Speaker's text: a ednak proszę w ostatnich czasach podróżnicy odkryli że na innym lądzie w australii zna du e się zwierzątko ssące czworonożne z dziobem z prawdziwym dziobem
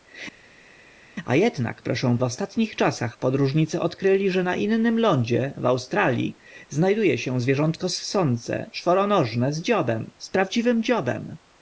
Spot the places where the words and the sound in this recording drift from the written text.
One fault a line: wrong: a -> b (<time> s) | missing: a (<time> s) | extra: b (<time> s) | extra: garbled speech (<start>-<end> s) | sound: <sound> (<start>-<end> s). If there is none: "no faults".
no faults